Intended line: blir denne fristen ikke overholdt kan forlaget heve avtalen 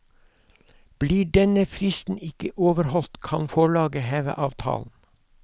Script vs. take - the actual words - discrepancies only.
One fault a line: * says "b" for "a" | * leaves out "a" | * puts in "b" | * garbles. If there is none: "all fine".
all fine